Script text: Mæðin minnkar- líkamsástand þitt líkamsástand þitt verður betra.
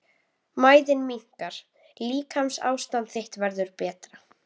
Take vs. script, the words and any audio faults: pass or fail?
fail